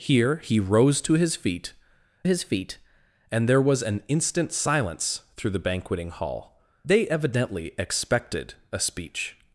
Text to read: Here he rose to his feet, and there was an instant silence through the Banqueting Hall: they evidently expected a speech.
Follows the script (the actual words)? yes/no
no